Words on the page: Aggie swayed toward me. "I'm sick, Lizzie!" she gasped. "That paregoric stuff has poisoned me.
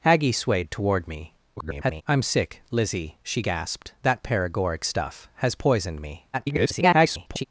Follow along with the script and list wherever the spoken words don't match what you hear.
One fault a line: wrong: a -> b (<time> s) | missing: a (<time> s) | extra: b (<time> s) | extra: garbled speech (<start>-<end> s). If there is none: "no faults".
extra: garbled speech (1.6-2.0 s)
extra: garbled speech (6.3-7.4 s)